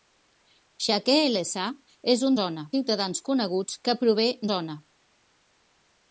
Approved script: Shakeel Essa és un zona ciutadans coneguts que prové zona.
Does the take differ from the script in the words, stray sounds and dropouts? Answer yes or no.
no